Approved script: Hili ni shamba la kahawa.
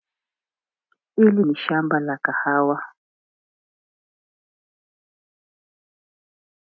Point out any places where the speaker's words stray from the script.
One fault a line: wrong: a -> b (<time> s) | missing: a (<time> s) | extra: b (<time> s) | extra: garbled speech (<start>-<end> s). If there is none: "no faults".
no faults